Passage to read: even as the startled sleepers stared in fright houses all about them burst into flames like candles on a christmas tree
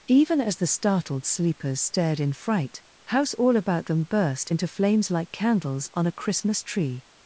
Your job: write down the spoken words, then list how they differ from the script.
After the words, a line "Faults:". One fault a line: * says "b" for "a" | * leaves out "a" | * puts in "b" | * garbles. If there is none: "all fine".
even as the startled sleepers stared in fright house all about them burst into flames like candles on a christmas tree
Faults:
* says "house" for "houses"